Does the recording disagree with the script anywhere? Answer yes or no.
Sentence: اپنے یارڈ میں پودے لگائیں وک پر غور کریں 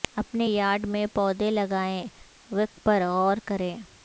no